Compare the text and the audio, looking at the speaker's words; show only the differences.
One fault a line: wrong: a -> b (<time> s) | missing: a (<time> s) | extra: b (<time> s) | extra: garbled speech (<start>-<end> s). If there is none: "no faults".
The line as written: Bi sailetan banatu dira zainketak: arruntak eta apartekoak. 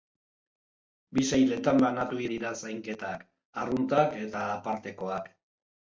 no faults